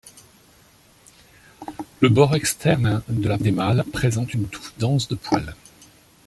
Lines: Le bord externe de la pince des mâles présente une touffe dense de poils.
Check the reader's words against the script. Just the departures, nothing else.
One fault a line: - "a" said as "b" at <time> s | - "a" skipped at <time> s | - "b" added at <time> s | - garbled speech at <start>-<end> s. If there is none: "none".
- "pince" skipped at 3.4 s